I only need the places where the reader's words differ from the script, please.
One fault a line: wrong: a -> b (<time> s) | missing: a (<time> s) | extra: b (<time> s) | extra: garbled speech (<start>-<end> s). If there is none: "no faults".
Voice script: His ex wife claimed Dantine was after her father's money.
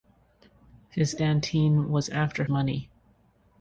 missing: ex wife claimed (1.1 s)
missing: her father's (2.5 s)